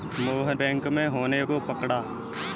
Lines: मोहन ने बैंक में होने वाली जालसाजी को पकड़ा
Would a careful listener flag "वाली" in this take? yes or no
yes